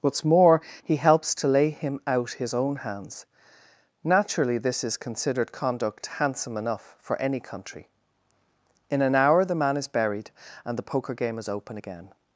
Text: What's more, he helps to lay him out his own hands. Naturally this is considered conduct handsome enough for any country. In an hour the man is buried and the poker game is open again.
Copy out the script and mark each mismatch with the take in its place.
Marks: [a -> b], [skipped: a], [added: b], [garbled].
What's more, he helps to lay him out his own hands. Naturally this is considered conduct handsome enough for any country. In an hour the man is buried and the poker game is open again.